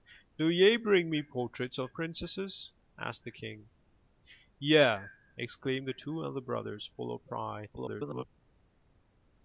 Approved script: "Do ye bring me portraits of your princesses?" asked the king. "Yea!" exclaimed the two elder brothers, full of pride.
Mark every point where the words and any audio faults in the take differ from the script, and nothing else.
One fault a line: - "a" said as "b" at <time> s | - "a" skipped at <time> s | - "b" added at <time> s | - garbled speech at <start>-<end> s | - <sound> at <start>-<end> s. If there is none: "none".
- "your" skipped at 1.9 s
- garbled speech at 7.8-8.2 s